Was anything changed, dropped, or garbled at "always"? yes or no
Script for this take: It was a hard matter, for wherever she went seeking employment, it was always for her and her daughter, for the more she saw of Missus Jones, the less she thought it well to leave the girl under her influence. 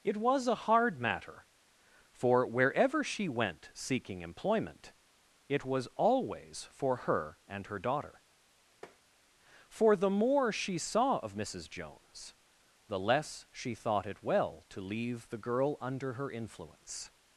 no